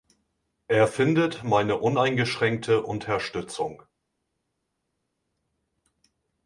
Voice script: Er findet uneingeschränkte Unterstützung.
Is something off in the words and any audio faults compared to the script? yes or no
yes